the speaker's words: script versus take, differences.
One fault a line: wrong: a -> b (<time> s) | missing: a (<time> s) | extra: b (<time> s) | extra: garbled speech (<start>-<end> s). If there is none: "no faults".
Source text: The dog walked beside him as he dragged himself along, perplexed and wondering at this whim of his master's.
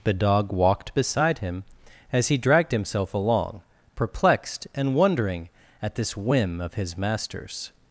no faults